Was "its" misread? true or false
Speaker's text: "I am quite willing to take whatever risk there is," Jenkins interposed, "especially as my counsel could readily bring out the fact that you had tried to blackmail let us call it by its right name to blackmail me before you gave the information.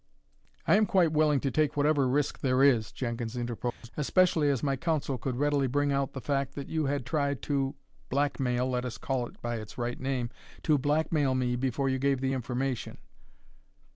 false